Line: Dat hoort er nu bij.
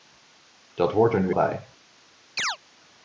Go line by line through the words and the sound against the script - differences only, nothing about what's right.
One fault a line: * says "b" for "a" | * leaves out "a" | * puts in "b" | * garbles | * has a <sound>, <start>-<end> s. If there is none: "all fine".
* has a chirp, 2.4-2.6 s